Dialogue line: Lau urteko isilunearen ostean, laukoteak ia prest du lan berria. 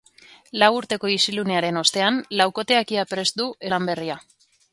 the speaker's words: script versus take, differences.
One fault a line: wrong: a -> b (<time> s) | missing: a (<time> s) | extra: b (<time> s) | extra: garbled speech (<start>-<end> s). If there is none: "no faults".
no faults